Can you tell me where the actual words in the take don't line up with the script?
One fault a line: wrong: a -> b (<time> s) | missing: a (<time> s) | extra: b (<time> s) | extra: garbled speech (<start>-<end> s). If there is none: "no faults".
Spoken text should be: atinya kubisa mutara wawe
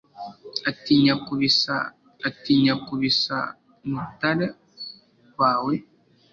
extra: atinya kubisa (2.3 s)